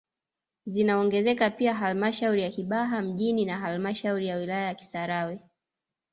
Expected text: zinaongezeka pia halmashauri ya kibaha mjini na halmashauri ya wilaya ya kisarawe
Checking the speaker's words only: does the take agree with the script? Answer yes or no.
yes